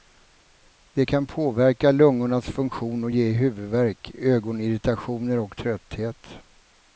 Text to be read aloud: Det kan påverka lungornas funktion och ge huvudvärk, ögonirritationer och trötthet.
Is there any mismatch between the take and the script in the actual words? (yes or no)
no